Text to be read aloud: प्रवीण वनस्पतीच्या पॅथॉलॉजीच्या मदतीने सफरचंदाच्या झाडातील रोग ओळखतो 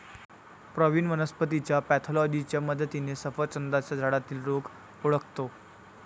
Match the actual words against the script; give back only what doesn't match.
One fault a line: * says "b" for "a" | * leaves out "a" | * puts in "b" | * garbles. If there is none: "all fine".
all fine